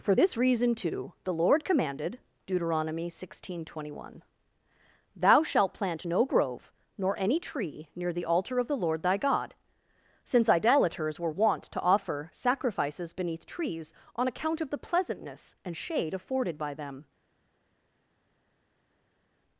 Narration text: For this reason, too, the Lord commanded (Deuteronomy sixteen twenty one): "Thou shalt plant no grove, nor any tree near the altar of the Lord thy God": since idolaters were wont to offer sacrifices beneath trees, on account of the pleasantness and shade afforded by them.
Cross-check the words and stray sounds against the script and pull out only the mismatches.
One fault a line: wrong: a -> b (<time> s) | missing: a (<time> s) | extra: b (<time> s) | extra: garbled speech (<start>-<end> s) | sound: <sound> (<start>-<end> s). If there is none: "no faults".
no faults